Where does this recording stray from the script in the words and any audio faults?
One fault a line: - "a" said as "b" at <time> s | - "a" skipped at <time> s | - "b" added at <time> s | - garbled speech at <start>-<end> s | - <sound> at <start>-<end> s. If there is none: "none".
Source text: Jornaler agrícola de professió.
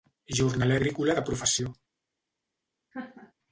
- laugh at 2.9-3.3 s